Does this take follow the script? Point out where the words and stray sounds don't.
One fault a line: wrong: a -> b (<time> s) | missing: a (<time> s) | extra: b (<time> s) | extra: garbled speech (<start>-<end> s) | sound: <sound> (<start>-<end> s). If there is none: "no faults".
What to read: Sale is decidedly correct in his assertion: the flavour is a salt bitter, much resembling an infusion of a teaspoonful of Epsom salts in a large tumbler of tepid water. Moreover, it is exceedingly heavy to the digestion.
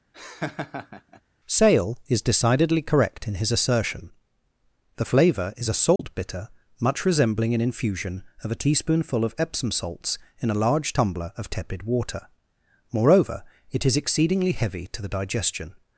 sound: laugh (0.1-1.2 s)
sound: dropout (6.0-6.0 s)